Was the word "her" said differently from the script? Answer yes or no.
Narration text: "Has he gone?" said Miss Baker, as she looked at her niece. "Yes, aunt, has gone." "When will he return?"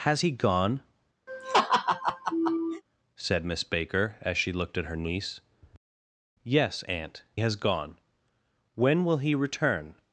no